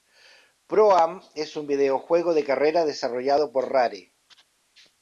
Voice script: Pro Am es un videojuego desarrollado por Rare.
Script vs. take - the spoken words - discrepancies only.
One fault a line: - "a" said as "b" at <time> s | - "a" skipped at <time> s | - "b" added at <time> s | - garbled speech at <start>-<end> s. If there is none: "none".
- "de carreras" added at 2.3 s